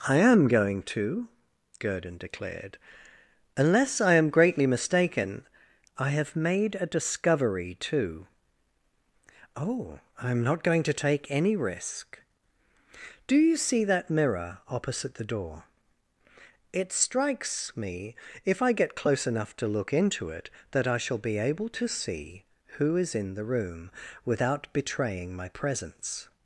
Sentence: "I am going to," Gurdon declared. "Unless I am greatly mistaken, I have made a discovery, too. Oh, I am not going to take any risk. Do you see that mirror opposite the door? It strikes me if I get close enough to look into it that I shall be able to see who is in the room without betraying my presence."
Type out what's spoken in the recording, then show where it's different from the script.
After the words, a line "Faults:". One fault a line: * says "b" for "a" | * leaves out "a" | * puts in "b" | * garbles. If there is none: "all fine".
"I am going to," Gurdon declared. "Unless I am greatly mistaken, I have made a discovery, too. Oh, I am not going to take any risk. Do you see that mirror opposite the door? It strikes me if I get close enough to look into it that I shall be able to see who is in the room without betraying my presence."
Faults:
all fine